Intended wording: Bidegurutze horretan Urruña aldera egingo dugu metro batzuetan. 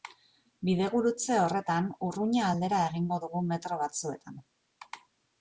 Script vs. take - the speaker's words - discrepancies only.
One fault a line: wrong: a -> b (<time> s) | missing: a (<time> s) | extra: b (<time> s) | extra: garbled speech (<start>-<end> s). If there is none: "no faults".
no faults